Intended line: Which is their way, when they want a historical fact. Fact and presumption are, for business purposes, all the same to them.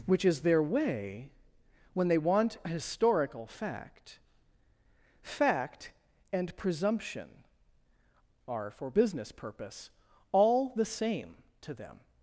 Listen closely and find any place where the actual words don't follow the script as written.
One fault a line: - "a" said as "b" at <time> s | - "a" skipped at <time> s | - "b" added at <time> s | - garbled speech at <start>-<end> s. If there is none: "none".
- "purposes" said as "purpose" at 9.3 s